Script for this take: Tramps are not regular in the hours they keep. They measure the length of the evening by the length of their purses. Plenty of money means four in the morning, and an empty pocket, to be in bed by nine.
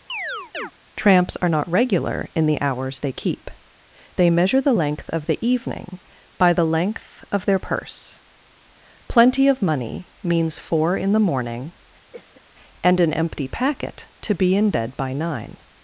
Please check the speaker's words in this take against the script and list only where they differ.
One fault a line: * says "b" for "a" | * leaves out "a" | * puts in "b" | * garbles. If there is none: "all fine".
* says "purse" for "purses"
* says "packet" for "pocket"